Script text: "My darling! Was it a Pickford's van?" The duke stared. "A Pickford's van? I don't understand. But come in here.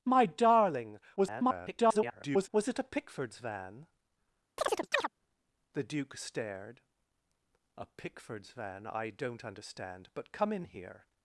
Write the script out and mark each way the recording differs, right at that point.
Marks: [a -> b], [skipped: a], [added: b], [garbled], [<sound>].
"My darling! [garbled] Was it a Pickford's van?" [chirp] The duke stared. "A Pickford's van? I don't understand. But come in here.